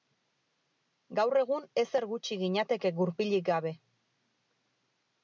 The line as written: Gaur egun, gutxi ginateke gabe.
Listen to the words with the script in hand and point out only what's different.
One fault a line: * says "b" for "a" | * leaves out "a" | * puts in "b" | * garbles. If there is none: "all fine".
* puts in "ezer"
* puts in "gurpilik"